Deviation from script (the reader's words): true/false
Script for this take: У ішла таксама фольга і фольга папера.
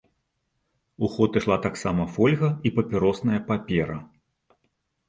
true